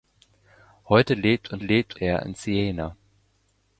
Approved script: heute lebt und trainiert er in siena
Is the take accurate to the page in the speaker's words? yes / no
no